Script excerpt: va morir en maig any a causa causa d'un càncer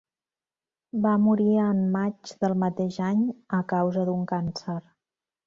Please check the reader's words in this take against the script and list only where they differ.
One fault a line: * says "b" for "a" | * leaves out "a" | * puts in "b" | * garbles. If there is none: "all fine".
* puts in "del mateix"
* leaves out "causa"